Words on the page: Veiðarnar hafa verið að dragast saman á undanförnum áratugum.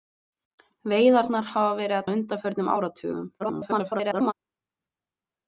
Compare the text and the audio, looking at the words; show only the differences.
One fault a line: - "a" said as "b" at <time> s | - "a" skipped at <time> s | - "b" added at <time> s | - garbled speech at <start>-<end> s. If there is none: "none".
- "dragast saman" skipped at 2.1 s
- garbled speech at 3.4-4.3 s